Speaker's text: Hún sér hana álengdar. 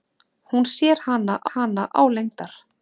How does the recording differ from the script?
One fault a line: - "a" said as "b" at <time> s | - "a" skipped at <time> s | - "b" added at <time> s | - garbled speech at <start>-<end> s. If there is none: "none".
- "hana" added at 1.5 s